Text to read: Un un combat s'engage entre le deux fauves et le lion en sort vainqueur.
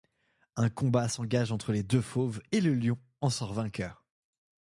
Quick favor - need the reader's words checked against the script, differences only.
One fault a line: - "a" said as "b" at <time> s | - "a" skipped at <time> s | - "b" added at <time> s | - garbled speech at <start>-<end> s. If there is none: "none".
- "un" skipped at 0.7 s
- "le" said as "les" at 1.7 s